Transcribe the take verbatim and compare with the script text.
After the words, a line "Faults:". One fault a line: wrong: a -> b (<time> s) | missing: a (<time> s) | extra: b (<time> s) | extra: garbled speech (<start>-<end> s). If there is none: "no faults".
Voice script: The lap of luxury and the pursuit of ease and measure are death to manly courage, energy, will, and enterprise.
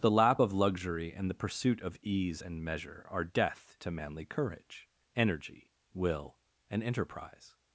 The lap of luxury and the pursuit of ease and measure are death to manly courage, energy, will, and enterprise.
Faults:
no faults